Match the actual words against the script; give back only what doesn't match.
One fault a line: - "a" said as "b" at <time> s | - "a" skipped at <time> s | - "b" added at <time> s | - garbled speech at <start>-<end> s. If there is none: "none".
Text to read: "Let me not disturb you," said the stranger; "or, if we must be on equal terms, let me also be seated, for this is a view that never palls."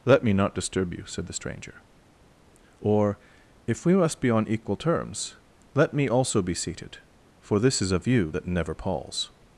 none